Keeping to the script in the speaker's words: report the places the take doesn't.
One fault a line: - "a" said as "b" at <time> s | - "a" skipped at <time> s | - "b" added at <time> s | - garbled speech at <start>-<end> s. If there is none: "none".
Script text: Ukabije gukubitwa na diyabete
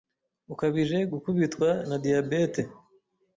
none